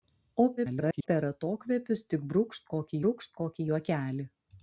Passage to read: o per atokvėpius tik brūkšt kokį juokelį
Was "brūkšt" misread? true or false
false